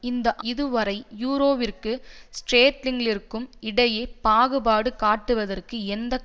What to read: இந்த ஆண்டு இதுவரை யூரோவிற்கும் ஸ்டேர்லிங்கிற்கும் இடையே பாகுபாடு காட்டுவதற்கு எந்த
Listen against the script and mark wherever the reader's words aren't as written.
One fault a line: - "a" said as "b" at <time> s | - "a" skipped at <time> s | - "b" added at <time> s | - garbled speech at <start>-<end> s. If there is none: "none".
- "ஆண்டு" skipped at 0.3 s